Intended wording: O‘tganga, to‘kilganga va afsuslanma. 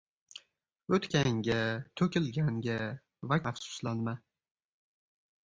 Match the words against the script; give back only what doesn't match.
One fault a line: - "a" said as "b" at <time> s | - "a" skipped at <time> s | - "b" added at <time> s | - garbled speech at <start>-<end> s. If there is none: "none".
none